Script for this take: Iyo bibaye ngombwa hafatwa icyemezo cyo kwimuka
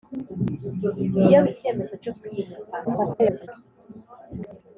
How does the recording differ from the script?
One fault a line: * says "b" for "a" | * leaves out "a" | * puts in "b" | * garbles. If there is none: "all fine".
* leaves out "bibaye ngombwa hafatwa"
* garbles